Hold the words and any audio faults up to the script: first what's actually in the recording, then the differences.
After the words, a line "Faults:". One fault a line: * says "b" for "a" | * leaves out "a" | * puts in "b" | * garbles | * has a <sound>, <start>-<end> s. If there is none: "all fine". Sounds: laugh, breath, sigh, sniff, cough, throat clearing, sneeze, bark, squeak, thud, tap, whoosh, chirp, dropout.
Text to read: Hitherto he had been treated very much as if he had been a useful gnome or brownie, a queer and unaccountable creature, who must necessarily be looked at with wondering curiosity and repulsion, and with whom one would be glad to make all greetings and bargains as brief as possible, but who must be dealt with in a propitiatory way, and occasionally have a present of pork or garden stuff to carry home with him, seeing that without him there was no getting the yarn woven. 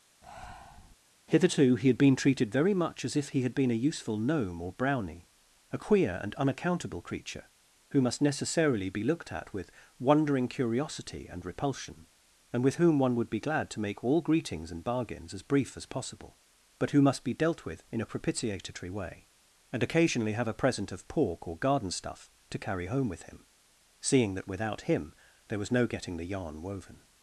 Hitherto he had been treated very much as if he had been a useful gnome or brownie, a queer and unaccountable creature, who must necessarily be looked at with wondering curiosity and repulsion, and with whom one would be glad to make all greetings and bargains as brief as possible, but who must be dealt with in a propitiatory way, and occasionally have a present of pork or garden stuff to carry home with him, seeing that without him there was no getting the yarn woven.
Faults:
* has a breath, 0.2-1.0 s